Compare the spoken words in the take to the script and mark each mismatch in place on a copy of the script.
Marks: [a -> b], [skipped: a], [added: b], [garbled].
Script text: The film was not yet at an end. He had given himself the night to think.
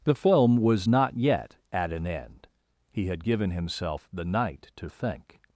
The film was not yet at an end. He had given himself the night to think.